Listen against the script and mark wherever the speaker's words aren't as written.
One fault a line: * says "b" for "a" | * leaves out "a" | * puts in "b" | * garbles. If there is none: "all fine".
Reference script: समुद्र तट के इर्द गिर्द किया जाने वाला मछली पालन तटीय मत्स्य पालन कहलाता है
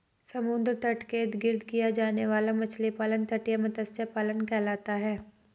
all fine